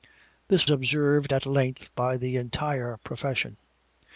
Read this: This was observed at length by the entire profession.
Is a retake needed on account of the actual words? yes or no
yes